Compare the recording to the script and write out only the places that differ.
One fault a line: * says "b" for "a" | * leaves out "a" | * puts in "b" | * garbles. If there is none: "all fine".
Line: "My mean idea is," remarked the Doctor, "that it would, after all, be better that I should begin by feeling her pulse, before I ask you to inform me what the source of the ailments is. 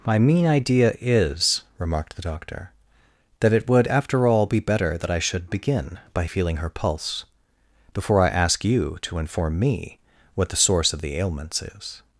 all fine